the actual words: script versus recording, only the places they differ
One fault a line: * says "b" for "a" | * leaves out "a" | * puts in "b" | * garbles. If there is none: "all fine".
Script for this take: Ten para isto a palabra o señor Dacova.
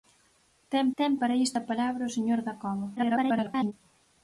* puts in "ten"
* garbles